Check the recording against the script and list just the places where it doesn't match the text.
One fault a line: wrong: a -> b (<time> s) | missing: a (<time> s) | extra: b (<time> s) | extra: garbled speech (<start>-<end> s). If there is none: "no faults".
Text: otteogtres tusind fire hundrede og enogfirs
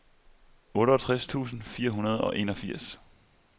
no faults